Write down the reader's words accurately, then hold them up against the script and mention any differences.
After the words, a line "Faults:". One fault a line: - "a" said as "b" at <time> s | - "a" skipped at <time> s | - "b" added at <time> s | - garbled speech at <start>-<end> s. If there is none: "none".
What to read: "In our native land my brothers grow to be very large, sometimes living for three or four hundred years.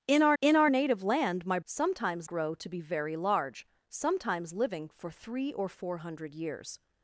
"In our in our native land my sometimes grow to be very large, sometimes living for three or four hundred years.
Faults:
- "in our" added at 0.4 s
- "brothers" said as "sometimes" at 1.6 s